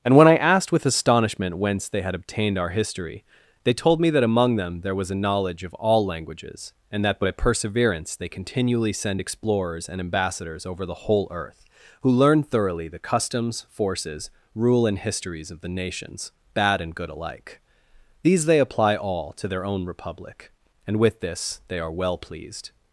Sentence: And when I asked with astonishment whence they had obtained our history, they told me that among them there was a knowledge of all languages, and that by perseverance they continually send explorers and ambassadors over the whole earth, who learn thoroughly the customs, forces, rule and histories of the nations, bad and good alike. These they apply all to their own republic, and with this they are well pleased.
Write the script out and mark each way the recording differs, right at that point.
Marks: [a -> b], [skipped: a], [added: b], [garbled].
And when I asked with astonishment whence they had obtained our history, they told me that among them there was a knowledge of all languages, and that by perseverance they continually send explorers and ambassadors over the whole earth, who learn thoroughly the customs, forces, rule and histories of the nations, bad and good alike. These they apply all to their own republic, and with this they are well pleased.